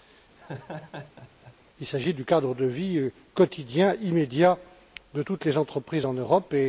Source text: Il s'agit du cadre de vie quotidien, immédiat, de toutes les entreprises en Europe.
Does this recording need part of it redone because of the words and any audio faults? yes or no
yes